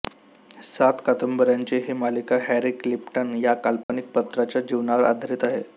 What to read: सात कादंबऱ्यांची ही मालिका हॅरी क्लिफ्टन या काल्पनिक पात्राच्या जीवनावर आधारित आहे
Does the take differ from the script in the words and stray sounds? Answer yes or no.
yes